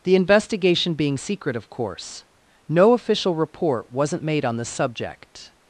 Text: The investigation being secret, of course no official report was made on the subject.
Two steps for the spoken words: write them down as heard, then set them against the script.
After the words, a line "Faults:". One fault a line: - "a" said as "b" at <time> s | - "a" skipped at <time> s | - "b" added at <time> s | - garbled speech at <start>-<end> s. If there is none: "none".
The investigation being secret, of course no official report wasn't made on the subject.
Faults:
- "was" said as "wasn't" at 3.9 s